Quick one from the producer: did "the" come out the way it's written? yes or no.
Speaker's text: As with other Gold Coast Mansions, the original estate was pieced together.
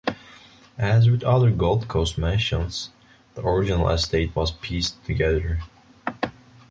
yes